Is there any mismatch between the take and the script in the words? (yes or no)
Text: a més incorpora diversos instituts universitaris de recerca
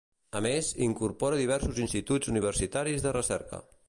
no